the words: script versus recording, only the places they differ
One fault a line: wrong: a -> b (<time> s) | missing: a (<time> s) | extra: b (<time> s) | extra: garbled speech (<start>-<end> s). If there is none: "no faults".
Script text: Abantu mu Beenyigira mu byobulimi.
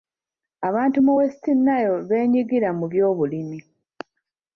extra: West Nile (1.2 s)